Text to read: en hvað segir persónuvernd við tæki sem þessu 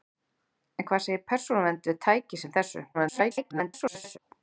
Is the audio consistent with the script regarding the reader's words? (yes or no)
no